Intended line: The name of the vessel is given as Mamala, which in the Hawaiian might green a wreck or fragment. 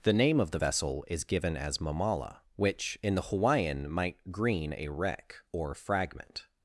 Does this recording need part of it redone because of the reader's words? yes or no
no